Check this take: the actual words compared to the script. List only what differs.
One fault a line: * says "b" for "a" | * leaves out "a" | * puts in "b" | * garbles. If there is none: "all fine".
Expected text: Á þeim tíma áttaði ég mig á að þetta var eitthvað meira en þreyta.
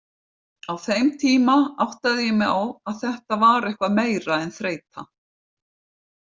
all fine